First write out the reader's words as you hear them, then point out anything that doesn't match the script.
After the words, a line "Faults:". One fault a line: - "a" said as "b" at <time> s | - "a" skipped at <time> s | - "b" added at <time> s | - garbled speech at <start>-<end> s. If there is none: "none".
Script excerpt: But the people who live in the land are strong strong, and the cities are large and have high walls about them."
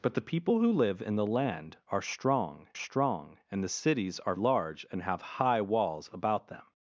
But the people who live in the land are strong strong, and the cities are large and have high walls about them."
Faults:
none